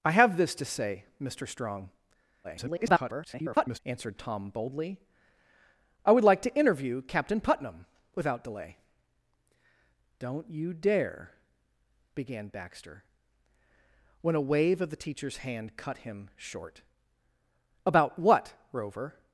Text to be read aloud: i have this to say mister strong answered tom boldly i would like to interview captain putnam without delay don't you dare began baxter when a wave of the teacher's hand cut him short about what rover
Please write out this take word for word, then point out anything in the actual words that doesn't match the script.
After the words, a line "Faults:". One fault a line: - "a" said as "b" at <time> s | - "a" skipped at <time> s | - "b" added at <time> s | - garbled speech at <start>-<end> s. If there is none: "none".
i have this to say mister strong [garbled] answered tom boldly i would like to interview captain putnam without delay don't you dare began baxter when a wave of the teacher's hand cut him short about what rover
Faults:
- garbled speech at 2.4-3.8 s